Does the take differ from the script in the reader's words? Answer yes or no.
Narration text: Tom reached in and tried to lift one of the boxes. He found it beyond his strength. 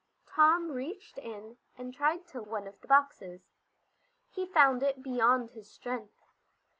yes